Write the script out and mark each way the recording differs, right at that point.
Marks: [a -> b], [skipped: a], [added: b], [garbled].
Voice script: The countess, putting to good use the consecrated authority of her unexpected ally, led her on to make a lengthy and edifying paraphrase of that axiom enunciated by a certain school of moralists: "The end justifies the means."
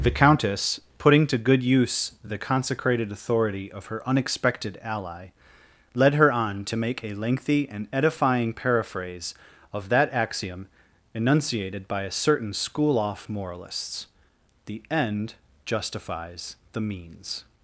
The countess, putting to good use the consecrated authority of her unexpected ally, led her on to make a lengthy and edifying paraphrase of that axiom enunciated by a certain school [of -> off] moralists: "The end justifies the means."